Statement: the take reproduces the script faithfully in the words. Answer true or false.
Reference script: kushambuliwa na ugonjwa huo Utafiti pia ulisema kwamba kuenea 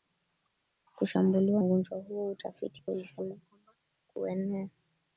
false